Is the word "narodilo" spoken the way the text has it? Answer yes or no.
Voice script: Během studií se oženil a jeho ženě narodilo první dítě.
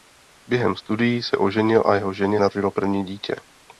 yes